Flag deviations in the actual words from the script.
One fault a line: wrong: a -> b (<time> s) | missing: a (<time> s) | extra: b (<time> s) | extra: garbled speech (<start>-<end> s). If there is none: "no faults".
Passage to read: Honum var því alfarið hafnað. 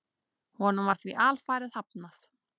no faults